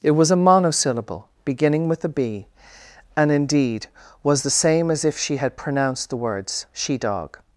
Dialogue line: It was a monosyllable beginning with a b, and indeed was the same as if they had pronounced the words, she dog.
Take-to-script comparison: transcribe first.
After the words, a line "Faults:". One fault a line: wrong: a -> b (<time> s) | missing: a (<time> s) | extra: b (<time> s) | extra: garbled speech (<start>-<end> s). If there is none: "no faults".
It was a monosyllable beginning with a b, and indeed was the same as if she had pronounced the words, she dog.
Faults:
wrong: they -> she (5.2 s)